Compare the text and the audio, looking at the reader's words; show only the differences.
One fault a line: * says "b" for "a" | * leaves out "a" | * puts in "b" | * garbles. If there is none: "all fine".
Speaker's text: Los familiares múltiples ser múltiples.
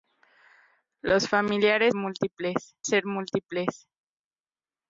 all fine